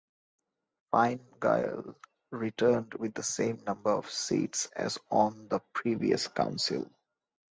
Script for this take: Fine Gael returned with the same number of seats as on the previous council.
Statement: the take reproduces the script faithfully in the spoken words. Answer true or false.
true